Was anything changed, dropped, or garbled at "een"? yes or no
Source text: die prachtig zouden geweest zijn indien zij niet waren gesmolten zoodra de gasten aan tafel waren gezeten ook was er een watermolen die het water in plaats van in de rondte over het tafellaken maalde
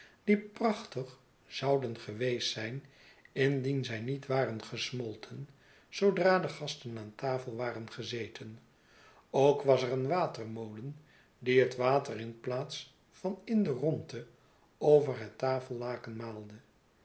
no